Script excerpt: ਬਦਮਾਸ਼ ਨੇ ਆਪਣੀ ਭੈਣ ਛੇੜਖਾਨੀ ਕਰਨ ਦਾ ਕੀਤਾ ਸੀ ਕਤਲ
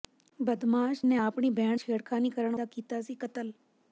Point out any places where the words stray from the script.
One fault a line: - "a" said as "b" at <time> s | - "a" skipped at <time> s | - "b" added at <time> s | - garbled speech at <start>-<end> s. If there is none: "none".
none